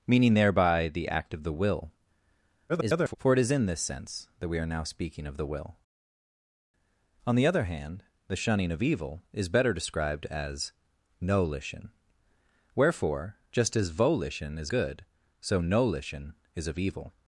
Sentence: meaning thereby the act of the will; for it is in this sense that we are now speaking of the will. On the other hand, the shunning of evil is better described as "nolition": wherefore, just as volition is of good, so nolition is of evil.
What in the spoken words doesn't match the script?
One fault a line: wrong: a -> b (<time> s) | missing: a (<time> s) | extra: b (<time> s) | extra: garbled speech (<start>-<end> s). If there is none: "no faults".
extra: garbled speech (2.7-3.2 s)
missing: of (14.7 s)